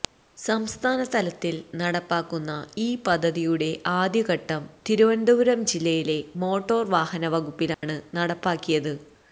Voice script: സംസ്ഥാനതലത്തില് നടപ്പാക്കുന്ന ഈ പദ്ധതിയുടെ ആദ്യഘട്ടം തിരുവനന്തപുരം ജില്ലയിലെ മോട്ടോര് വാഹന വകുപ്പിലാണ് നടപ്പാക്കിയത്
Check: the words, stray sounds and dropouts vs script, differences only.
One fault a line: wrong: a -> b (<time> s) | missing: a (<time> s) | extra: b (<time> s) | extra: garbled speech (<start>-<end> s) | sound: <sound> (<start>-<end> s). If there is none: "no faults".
sound: dropout (7.7-7.8 s)